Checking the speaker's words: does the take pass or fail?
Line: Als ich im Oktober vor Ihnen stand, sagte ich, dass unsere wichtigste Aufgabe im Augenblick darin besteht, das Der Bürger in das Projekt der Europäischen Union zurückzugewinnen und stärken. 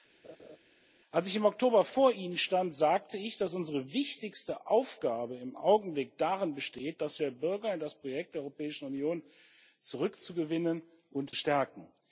pass